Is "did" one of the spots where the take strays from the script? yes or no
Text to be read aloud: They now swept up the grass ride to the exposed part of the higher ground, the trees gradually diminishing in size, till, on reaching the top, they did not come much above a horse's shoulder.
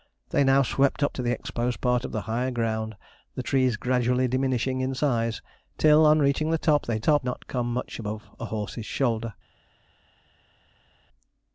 yes